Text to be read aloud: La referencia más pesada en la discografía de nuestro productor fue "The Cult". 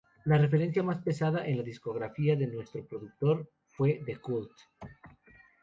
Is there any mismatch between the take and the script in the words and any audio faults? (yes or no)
no